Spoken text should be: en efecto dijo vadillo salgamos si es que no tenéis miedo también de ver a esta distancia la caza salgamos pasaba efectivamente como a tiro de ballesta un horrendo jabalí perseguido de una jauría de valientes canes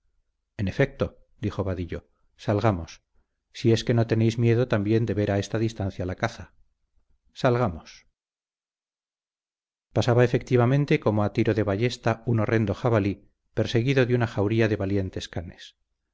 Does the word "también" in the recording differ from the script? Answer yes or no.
no